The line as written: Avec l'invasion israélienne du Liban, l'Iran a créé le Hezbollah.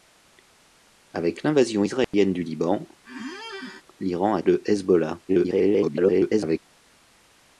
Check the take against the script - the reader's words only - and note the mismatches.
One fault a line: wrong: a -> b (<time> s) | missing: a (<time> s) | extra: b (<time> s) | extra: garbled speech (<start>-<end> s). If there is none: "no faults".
missing: créé (4.4 s)
extra: garbled speech (5.3-6.6 s)